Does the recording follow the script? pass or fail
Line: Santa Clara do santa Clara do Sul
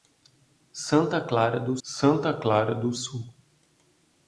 pass